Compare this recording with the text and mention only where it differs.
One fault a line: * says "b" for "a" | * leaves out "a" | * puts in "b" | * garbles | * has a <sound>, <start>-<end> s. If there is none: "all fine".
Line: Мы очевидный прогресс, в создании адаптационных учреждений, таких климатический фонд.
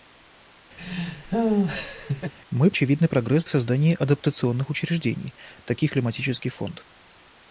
* has a laugh, 0.8-2.3 s